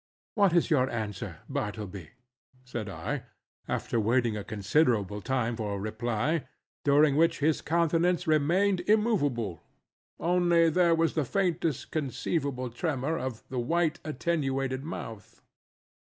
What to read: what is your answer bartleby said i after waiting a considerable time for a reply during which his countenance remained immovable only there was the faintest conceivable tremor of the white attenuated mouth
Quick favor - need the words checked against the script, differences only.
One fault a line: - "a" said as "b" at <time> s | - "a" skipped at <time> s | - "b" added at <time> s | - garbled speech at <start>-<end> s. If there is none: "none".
none